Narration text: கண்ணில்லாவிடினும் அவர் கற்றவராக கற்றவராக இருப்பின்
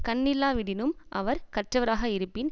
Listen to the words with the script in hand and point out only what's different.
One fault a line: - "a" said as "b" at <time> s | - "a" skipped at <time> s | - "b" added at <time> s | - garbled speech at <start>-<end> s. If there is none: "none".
- "கற்றவராக" skipped at 2.0 s